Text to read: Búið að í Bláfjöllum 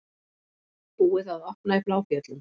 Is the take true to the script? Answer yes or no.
no